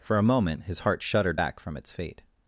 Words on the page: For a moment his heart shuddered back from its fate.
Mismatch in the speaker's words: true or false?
false